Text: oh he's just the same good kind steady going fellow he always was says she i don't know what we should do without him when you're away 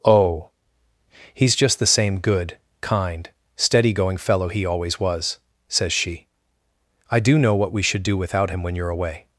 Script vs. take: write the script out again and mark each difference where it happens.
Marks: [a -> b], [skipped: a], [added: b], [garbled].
oh he's just the same good kind steady going fellow he always was says she i [don't -> do] know what we should do without him when you're away